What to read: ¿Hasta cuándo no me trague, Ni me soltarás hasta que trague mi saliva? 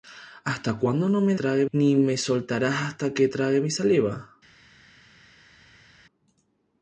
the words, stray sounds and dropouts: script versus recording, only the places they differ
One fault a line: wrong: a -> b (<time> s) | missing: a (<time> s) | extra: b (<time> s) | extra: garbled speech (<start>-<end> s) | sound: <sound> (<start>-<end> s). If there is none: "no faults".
no faults